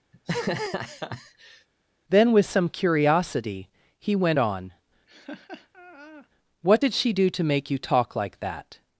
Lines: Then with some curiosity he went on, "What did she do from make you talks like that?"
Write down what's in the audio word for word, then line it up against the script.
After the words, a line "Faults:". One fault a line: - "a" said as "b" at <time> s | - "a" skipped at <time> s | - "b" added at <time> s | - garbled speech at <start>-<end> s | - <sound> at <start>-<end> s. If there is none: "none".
Then with some curiosity he went on, "What did she do to make you talk like that?"
Faults:
- laugh at 0.1-1.7 s
- laugh at 5.1-6.3 s
- "from" said as "to" at 7.3 s
- "talks" said as "talk" at 7.8 s